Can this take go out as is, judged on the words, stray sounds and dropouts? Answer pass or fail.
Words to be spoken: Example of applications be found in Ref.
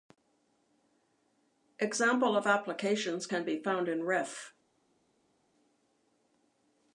fail